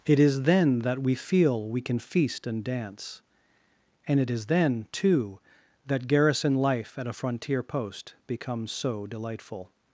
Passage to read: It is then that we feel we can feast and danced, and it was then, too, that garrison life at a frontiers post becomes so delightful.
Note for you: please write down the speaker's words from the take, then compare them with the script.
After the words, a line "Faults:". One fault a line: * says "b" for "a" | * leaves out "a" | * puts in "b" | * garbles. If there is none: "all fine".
It is then that we feel we can feast and dance, and it is then, too, that garrison life at a frontier post becomes so delightful.
Faults:
* says "dance" for "danced"
* says "is" for "was"
* says "frontier" for "frontiers"